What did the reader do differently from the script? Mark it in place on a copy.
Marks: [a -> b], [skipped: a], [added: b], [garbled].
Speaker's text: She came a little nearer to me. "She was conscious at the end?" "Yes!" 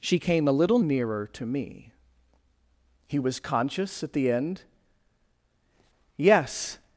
She came a little nearer to me. ["She -> He] was conscious at the end?" "Yes!"